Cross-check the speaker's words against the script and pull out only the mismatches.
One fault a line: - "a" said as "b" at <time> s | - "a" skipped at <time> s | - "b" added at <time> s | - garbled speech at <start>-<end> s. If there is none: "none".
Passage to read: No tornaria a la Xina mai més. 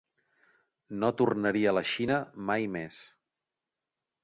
none